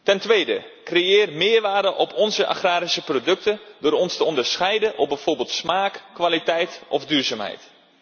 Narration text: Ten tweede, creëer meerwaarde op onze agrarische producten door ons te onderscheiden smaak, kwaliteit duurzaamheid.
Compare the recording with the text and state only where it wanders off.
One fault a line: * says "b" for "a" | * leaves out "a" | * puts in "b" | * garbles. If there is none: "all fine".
* puts in "op bijvoorbeeld"
* puts in "of"